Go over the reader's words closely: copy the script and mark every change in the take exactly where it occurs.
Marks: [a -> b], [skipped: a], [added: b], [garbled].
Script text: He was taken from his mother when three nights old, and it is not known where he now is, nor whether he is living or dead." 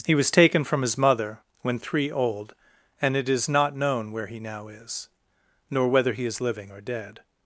He was taken from his mother when three [skipped: nights] old, and it is not known where he now is, nor whether he is living or dead."